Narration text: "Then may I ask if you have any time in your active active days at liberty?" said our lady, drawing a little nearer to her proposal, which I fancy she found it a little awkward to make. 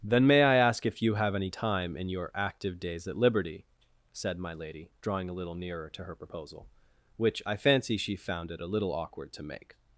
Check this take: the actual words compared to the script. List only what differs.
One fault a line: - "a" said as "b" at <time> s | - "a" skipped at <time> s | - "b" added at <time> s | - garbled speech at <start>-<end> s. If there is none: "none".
- "active" skipped at 2.8 s
- "our" said as "my" at 4.4 s